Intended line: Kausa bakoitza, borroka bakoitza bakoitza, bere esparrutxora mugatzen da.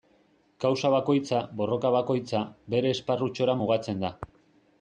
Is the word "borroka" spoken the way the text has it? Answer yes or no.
yes